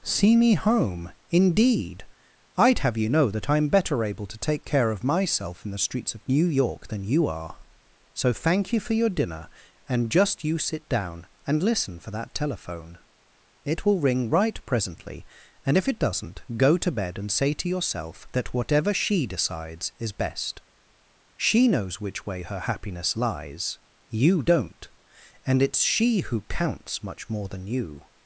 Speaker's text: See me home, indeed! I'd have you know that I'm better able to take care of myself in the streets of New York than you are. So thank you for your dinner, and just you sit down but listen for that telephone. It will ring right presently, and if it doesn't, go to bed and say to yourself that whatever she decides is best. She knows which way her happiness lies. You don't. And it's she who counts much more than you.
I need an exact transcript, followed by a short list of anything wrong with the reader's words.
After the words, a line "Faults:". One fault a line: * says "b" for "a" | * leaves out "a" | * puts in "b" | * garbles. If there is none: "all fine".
See me home, indeed! I'd have you know that I'm better able to take care of myself in the streets of New York than you are. So thank you for your dinner, and just you sit down and listen for that telephone. It will ring right presently, and if it doesn't, go to bed and say to yourself that whatever she decides is best. She knows which way her happiness lies. You don't. And it's she who counts much more than you.
Faults:
* says "and" for "but"